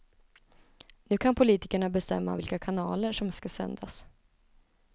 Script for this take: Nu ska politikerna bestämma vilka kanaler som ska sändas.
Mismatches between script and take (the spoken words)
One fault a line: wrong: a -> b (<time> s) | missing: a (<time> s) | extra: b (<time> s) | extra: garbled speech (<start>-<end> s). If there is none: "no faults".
wrong: ska -> kan (1.1 s)